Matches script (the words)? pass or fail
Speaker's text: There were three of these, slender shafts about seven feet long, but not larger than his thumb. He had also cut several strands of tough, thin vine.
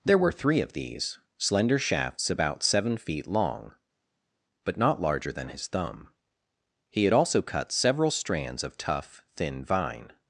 pass